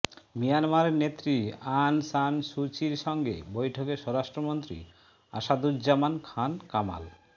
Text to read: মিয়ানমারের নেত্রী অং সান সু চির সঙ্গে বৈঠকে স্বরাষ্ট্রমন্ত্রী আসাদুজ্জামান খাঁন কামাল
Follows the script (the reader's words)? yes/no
yes